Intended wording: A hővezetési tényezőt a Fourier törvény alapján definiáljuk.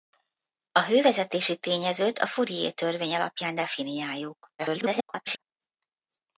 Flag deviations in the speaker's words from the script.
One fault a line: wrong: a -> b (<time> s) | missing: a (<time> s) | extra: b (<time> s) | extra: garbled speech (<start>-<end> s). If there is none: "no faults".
extra: garbled speech (4.6-5.4 s)